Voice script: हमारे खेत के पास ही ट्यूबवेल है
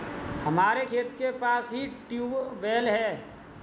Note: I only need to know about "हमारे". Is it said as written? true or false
true